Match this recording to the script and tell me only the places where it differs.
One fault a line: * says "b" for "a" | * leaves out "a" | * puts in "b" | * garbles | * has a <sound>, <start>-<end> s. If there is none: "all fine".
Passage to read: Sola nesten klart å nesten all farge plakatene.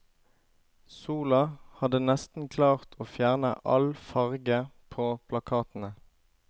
* puts in "hadde"
* says "fjerne" for "nesten"
* puts in "på"